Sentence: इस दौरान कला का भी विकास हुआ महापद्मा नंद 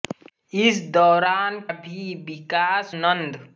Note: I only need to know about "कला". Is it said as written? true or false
false